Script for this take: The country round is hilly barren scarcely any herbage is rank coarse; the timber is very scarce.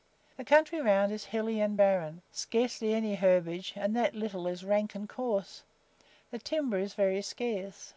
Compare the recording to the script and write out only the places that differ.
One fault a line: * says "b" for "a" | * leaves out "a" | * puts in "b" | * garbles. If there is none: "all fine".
* puts in "and"
* puts in "and that little"
* puts in "and"